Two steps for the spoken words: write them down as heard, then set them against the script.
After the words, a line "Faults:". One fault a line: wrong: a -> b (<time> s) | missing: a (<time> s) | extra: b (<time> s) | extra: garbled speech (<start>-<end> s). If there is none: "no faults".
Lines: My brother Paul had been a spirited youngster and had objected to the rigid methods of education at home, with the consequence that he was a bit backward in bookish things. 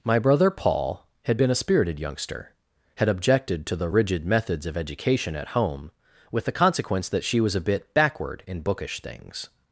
My brother Paul had been a spirited youngster had objected to the rigid methods of education at home, with the consequence that she was a bit backward in bookish things.
Faults:
missing: and (2.5 s)
wrong: he -> she (7.2 s)